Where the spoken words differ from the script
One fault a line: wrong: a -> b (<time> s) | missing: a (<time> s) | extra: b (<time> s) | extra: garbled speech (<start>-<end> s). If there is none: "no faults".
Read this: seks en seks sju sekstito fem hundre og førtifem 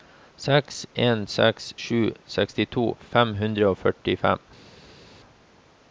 no faults